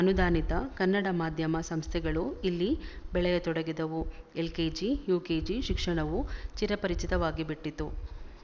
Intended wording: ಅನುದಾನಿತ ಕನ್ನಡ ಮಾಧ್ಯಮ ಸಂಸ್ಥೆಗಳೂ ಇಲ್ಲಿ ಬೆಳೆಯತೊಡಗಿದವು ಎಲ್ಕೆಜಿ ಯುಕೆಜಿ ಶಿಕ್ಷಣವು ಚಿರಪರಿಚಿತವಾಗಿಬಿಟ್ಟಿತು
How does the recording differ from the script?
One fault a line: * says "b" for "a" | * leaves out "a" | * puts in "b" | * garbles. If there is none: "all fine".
all fine